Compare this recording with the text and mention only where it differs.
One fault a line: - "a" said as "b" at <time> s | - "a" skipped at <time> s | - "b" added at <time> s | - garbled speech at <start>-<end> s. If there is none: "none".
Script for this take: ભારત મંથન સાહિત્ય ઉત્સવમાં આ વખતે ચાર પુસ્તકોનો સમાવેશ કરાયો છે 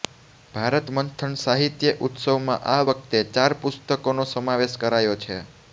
none